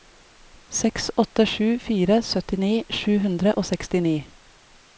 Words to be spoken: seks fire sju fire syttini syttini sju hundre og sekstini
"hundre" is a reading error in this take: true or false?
false